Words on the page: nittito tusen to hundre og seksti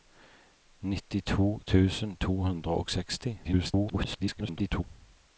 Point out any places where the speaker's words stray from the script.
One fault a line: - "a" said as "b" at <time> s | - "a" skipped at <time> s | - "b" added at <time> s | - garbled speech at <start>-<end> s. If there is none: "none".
- garbled speech at 3.4-4.8 s